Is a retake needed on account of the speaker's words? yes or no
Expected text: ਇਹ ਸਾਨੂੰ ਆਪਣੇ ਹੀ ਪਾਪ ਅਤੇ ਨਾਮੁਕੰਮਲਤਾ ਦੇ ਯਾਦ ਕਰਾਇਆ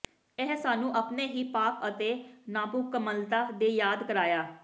no